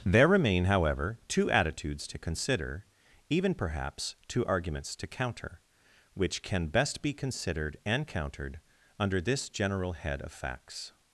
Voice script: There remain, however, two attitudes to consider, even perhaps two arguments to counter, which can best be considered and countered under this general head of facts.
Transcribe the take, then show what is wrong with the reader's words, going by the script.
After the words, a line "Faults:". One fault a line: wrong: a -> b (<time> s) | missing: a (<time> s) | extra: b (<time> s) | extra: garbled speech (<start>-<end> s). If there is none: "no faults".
There remain, however, two attitudes to consider, even perhaps two arguments to counter, which can best be considered and countered under this general head of facts.
Faults:
no faults